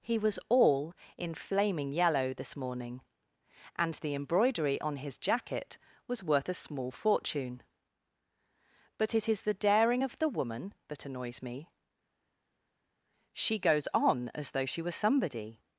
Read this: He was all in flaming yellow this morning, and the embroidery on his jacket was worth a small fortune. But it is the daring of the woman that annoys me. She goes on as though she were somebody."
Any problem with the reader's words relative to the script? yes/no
no